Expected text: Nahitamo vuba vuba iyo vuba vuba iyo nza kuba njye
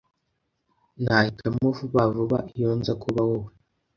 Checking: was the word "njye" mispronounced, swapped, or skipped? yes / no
yes